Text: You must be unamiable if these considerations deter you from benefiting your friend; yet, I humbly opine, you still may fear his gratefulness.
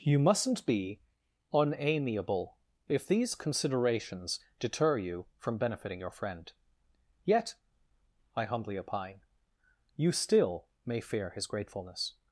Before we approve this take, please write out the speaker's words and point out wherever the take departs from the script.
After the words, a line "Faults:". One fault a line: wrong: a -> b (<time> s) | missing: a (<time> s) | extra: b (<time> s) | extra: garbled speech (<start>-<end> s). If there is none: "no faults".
You mustn't be unamiable if these considerations deter you from benefiting your friend; yet, I humbly opine, you still may fear his gratefulness.
Faults:
wrong: must -> mustn't (0.2 s)